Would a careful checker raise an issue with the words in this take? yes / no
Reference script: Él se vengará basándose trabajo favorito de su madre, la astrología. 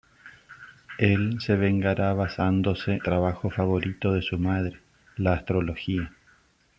no